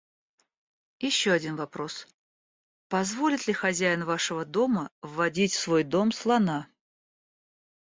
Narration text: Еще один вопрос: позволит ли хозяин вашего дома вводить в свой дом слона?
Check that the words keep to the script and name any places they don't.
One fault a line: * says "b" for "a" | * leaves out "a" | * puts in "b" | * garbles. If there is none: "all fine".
all fine